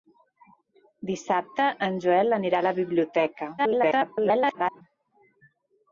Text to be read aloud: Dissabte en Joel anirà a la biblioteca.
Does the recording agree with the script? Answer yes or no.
no